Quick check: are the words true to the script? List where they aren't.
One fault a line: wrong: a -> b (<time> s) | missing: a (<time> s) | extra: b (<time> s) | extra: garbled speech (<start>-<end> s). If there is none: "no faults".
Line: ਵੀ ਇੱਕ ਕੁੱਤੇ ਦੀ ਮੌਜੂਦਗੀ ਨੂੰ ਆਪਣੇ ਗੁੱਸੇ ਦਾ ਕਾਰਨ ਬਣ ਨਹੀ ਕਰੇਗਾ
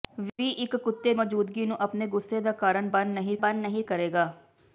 missing: ਦੀ (1.1 s)
extra: ਬਣ ਨਹੀ (3.4 s)